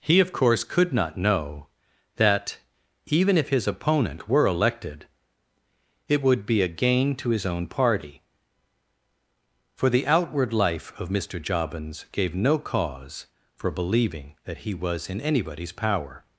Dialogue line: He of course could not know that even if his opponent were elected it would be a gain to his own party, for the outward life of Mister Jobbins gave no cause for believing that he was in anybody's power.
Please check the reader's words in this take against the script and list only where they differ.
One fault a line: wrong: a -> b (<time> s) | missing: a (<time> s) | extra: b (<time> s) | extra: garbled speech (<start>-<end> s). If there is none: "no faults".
no faults